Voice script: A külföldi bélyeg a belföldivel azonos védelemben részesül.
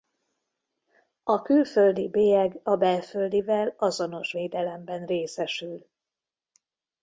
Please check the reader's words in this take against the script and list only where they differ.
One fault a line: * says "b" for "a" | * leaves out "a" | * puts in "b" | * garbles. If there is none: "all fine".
all fine